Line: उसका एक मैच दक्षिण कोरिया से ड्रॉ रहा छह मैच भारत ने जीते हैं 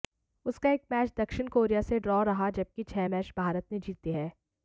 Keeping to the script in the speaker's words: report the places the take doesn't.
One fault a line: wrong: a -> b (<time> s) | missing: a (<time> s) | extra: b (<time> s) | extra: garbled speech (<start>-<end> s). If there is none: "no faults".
extra: जबकि (2.5 s)